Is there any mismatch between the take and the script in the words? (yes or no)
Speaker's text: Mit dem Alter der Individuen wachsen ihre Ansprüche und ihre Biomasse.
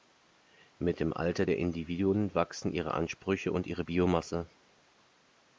no